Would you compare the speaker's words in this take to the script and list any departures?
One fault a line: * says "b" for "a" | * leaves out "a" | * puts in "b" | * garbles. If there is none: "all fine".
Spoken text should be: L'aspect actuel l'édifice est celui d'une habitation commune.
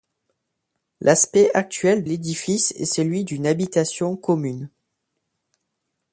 all fine